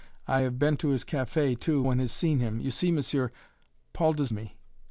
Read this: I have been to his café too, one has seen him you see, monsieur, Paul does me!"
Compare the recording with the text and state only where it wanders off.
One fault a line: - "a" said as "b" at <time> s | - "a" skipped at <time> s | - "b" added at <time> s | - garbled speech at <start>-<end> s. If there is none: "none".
none